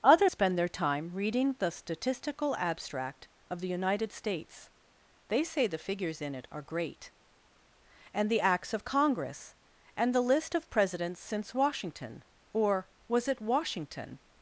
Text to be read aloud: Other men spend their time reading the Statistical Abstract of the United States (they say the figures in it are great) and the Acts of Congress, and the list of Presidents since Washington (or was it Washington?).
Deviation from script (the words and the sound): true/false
true